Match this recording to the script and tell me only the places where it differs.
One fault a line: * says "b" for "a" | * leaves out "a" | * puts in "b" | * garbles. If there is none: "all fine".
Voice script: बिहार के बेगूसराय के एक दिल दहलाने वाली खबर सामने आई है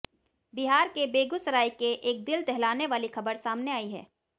all fine